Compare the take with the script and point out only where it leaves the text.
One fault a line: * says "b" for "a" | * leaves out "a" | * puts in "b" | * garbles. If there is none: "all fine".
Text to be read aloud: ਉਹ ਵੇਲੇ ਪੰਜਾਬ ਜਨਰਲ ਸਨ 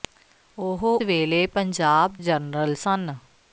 all fine